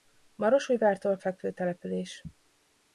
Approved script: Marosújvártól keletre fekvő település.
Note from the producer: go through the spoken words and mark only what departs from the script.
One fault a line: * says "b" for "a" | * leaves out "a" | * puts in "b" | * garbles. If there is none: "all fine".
* leaves out "keletre"